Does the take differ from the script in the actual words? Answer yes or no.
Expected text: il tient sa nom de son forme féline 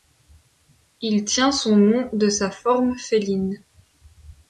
yes